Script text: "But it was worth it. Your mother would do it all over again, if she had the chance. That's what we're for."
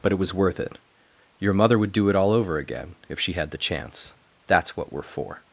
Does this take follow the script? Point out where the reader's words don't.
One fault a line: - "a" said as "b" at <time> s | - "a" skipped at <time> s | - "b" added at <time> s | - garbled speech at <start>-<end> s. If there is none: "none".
none